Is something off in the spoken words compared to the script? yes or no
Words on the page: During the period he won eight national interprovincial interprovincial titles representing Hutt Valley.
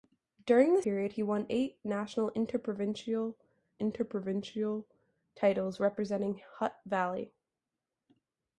no